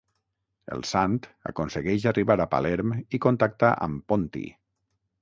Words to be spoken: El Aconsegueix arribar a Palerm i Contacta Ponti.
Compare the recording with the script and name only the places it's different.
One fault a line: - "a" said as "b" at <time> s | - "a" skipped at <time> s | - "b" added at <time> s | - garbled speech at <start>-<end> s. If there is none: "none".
- "Sant" added at 0.9 s
- "amb" added at 3.9 s